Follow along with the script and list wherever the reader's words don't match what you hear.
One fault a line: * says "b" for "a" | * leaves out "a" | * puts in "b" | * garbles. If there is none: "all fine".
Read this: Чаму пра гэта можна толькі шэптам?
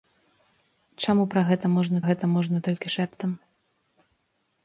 * puts in "гэта можна"